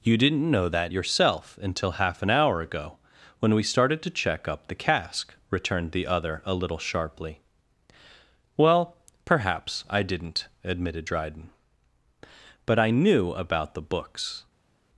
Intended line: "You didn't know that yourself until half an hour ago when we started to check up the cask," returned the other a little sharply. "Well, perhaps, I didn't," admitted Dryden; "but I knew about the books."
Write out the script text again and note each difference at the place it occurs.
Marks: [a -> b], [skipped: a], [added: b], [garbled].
"You didn't know that yourself until half an hour ago when we started to check up the cask," returned the other a little sharply. "Well, perhaps, I didn't," admitted Dryden; "but I knew about the books."